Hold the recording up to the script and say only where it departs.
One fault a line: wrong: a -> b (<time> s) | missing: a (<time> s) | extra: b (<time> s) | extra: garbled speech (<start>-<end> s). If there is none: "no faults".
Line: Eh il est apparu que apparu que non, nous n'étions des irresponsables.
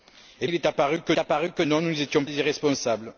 no faults